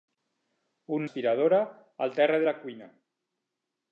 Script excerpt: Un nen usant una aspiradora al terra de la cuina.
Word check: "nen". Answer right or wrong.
wrong